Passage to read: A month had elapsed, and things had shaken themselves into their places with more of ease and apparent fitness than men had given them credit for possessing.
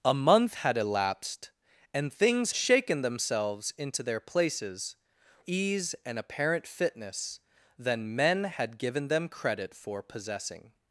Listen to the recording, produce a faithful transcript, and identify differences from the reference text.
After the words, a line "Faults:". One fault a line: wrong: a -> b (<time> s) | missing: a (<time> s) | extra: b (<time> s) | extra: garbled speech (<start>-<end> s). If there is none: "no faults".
A month had elapsed, and things shaken themselves into their places ease and apparent fitness than men had given them credit for possessing.
Faults:
missing: had (2.5 s)
missing: with more of (4.9 s)